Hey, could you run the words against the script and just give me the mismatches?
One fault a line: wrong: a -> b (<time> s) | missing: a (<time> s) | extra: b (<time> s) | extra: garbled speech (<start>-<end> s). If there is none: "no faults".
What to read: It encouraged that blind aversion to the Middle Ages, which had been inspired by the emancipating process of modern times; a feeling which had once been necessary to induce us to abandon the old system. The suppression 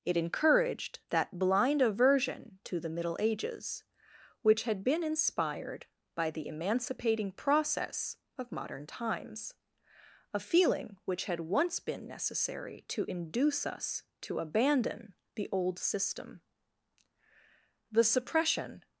no faults